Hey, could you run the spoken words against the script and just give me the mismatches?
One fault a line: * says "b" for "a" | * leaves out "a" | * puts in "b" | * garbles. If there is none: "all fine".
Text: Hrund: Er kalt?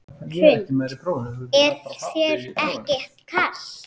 * puts in "þér ekki"